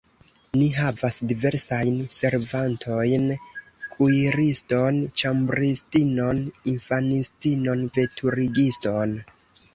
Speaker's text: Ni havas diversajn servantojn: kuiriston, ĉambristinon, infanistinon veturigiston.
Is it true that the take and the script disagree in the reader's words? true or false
false